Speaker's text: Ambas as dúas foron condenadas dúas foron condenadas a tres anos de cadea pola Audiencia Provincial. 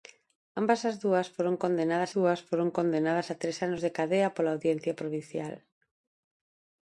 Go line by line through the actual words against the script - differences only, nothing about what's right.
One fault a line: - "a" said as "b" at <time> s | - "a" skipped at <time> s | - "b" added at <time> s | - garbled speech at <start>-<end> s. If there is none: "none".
none